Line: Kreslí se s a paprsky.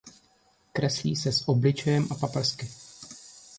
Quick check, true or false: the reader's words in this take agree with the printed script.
false